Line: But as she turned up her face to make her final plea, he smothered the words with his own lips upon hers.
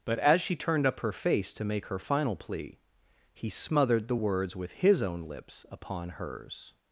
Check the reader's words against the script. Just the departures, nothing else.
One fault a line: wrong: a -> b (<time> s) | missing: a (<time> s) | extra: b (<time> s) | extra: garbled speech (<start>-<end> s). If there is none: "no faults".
no faults